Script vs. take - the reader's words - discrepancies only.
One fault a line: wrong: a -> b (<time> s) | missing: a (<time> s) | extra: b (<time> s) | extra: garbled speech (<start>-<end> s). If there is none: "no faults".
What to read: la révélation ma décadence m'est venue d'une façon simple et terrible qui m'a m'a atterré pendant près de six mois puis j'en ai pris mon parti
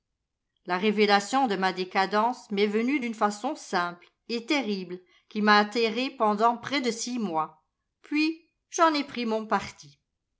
extra: de (1.5 s)
missing: m'a (5.6 s)